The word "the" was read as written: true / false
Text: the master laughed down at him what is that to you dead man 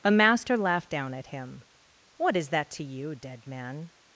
false